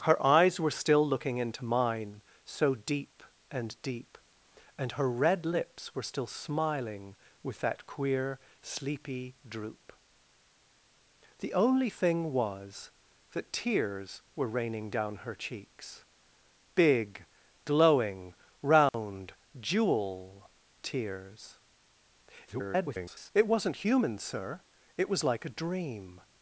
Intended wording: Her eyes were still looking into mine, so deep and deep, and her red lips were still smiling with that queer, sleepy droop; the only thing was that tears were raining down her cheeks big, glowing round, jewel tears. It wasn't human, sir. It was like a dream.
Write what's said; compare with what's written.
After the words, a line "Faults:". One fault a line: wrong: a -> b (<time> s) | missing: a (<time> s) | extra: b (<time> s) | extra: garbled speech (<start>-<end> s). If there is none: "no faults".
Her eyes were still looking into mine, so deep and deep, and her red lips were still smiling with that queer, sleepy droop; the only thing was that tears were raining down her cheeks big, glowing round, jewel tears. [garbled] It wasn't human, sir. It was like a dream.
Faults:
extra: garbled speech (22.5-23.3 s)